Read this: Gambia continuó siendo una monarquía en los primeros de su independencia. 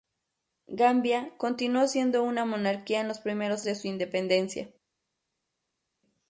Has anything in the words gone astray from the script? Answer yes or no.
no